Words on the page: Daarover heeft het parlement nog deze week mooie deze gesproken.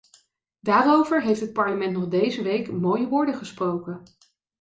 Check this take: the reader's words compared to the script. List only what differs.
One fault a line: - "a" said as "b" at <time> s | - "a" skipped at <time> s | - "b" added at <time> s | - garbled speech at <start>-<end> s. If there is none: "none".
- "deze" said as "woorden" at 3.1 s